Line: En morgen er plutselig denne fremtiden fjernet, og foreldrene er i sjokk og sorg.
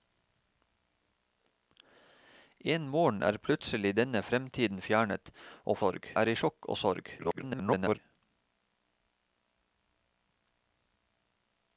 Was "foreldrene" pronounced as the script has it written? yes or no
no